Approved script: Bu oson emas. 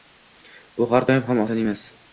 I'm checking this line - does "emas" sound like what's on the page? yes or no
yes